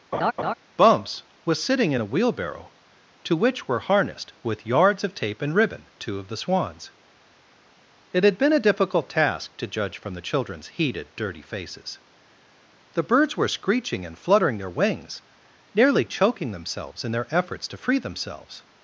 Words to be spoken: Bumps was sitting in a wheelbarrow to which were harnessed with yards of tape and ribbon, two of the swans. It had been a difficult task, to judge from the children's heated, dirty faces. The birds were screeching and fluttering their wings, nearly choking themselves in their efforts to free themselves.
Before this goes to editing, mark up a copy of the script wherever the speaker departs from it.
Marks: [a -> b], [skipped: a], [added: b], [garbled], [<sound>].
[laugh] Bumps was sitting in a wheelbarrow to which were harnessed with yards of tape and ribbon, two of the swans. It had been a difficult task, to judge from the children's heated, dirty faces. The birds were screeching and fluttering their wings, nearly choking themselves in their efforts to free themselves.